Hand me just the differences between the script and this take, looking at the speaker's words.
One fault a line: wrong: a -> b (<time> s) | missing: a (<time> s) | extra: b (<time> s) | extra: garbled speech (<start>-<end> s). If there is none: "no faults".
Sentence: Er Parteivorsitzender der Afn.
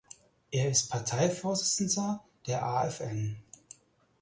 extra: ist (0.7 s)